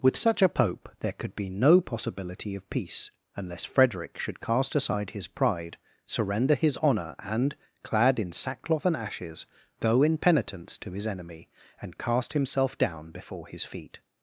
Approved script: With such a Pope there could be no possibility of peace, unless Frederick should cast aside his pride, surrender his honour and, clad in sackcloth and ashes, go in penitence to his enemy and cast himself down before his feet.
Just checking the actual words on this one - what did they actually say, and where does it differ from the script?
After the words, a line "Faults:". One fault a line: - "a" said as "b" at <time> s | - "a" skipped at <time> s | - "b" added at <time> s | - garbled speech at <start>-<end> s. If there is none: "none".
With such a Pope there could be no possibility of peace, unless Frederick should cast aside his pride, surrender his honour and, clad in sackcloth and ashes, go in penitence to his enemy and cast himself down before his feet.
Faults:
none